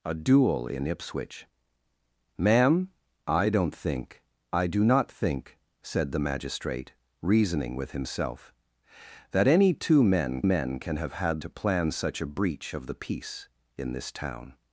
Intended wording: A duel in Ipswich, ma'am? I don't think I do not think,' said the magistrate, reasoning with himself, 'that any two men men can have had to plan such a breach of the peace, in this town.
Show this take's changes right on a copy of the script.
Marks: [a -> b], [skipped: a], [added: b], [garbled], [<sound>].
A duel in Ipswich, ma'am? I don't think I do not think,' said the magistrate, reasoning with himself, 'that any two men men can have had to plan such a breach of the peace, in this town.